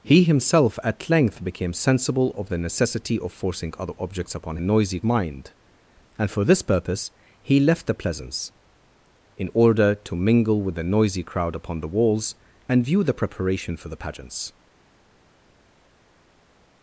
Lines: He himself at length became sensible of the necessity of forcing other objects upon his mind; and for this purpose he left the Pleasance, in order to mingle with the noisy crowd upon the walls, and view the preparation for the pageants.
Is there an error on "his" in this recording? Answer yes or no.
yes